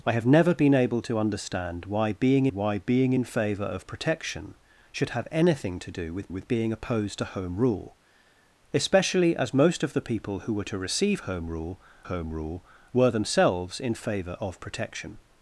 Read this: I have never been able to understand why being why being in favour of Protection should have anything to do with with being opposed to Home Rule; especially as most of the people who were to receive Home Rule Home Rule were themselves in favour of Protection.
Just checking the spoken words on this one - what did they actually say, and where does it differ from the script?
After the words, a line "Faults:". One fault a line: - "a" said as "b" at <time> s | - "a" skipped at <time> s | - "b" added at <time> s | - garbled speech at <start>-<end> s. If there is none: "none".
I have never been able to understand why being why being in favour of Protection should have anything to do with with being opposed to Home Rule; especially as most of the people who were to receive Home Rule Home Rule were themselves in favour of Protection.
Faults:
none